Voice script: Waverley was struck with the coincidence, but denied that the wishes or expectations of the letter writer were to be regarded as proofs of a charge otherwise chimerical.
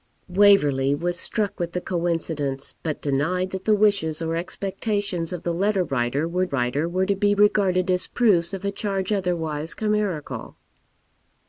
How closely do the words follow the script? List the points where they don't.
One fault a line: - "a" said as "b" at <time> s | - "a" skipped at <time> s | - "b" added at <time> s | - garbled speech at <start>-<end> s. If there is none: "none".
- "writer were" added at 6.4 s